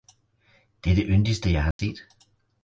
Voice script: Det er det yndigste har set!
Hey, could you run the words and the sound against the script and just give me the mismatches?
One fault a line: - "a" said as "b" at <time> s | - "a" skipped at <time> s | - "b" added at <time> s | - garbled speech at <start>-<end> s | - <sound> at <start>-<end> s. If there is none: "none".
- "jeg" added at 1.5 s
- dropout at 1.7-1.8 s